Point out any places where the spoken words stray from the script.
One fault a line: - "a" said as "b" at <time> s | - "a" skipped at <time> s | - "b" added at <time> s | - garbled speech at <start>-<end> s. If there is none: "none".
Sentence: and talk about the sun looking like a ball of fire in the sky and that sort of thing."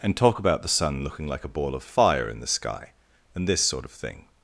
- "that" said as "this" at 3.5 s